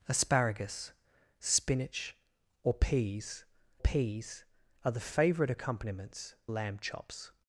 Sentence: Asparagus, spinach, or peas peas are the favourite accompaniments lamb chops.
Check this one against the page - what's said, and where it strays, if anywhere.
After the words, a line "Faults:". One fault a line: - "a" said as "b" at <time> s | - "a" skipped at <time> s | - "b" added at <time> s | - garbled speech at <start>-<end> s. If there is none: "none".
Asparagus, spinach, or peas peas are the favourite accompaniments lamb chops.
Faults:
none